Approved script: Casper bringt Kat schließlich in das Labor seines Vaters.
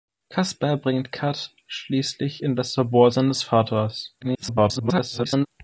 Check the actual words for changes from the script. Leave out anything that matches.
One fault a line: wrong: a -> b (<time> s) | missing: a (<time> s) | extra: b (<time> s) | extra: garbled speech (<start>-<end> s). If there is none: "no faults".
extra: garbled speech (4.2-5.5 s)